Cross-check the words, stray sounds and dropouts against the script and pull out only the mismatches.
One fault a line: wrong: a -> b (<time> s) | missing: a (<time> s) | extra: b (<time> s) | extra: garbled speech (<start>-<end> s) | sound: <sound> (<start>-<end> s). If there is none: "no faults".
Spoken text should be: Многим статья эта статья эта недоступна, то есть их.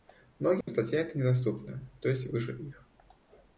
sound: dropout (0.6-0.7 s)
missing: статья эта (1.1 s)
extra: выше (2.3 s)